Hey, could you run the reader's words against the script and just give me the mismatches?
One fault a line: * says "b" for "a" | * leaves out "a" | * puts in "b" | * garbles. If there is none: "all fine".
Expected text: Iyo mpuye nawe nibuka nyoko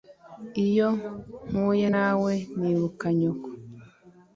all fine